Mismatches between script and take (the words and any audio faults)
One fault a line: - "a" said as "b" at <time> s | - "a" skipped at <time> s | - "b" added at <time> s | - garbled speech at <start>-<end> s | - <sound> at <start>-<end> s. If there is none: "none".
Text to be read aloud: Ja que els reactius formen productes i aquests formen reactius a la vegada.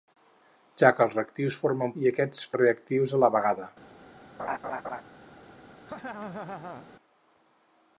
- "productes" skipped at 1.9 s
- "formen" skipped at 2.5 s
- laugh at 4.4-5.0 s
- laugh at 5.9-6.9 s